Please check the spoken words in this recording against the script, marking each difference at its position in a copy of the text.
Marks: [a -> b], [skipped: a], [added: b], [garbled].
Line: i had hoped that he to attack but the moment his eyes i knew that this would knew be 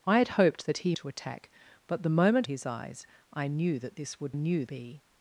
i had hoped that he to attack but the moment his eyes i knew that this would knew be